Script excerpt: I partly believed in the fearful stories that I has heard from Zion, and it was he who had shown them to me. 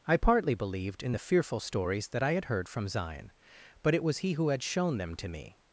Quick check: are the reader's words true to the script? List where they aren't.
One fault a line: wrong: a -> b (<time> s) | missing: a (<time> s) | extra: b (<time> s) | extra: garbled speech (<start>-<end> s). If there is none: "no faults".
wrong: has -> had (2.3 s)
wrong: and -> but (3.8 s)